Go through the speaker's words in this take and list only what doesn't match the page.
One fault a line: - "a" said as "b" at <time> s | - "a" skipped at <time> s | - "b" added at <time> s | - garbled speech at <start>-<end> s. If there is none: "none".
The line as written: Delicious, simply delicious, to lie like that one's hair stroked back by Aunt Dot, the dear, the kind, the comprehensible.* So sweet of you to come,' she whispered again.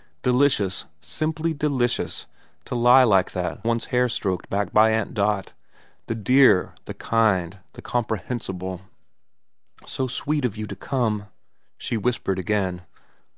none